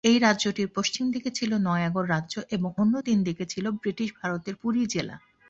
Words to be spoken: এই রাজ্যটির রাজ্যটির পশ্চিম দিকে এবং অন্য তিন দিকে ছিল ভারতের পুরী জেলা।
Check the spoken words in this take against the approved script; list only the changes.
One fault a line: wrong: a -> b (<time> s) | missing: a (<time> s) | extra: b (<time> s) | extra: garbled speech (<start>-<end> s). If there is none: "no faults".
missing: রাজ্যটির (0.7 s)
extra: ছিল নয়াগড় রাজ্য (1.3 s)
extra: ব্রিটিশ (3.8 s)